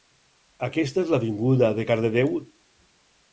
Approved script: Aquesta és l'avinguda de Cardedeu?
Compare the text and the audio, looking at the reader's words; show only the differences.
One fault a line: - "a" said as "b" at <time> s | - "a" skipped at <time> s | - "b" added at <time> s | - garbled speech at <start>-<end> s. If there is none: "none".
none